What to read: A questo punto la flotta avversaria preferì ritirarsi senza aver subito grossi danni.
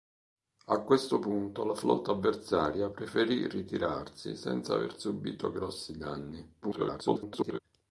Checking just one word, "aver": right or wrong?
right